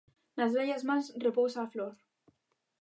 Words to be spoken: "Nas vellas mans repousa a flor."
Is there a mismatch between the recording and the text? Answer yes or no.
no